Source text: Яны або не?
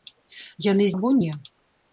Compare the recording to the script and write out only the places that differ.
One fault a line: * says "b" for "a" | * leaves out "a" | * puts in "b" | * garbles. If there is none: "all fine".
all fine